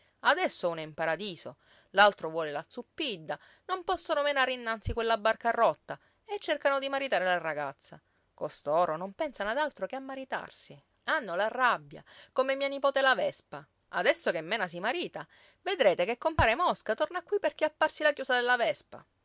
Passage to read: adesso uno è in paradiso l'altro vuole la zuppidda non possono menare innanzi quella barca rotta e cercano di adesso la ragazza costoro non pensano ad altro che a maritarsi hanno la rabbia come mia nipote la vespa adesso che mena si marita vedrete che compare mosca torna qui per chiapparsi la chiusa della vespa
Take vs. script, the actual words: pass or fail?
fail